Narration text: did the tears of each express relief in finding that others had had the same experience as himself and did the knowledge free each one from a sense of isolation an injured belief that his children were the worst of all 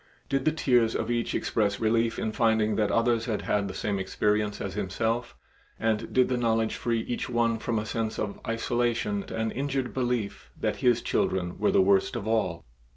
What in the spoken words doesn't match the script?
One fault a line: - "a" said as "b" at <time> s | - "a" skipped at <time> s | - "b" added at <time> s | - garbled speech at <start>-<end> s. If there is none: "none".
none